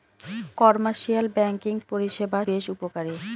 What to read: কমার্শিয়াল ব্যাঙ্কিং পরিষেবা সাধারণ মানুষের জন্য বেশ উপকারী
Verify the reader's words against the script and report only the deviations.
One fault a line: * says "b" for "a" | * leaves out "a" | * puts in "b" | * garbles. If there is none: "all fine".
* leaves out "সাধারণ মানুষের জন্য"